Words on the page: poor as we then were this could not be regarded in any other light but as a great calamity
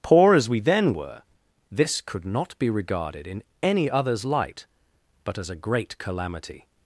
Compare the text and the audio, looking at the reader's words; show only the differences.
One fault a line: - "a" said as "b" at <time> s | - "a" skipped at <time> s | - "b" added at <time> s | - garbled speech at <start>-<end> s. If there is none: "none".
- "other" said as "others" at 3.9 s